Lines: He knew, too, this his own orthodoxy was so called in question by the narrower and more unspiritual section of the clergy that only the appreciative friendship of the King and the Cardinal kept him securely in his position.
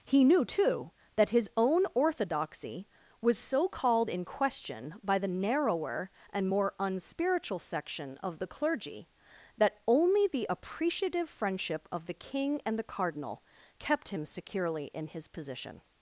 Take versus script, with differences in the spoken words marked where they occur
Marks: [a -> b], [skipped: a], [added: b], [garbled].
He knew, too, [this -> that] his own orthodoxy was so called in question by the narrower and more unspiritual section of the clergy that only the appreciative friendship of the King and the Cardinal kept him securely in his position.